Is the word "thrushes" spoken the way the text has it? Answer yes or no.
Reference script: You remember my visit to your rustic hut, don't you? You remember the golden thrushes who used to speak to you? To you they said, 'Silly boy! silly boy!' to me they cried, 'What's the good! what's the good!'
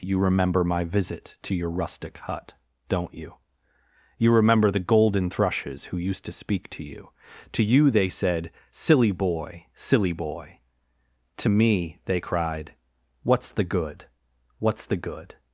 yes